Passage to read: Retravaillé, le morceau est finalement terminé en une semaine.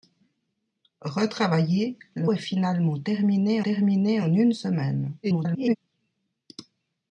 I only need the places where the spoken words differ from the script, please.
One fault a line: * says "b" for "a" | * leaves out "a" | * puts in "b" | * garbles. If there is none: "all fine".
* leaves out "morceau"
* puts in "terminé"
* garbles